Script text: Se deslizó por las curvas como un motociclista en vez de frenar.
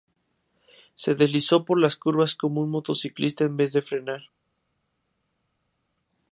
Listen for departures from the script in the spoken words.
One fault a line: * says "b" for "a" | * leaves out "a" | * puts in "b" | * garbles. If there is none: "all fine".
all fine